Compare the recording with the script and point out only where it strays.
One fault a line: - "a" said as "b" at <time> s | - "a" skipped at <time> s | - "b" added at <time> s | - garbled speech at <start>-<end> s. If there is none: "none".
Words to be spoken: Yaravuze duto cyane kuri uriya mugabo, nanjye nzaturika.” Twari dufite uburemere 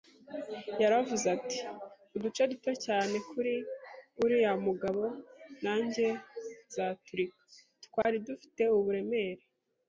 - "ati Uduce" added at 1.4 s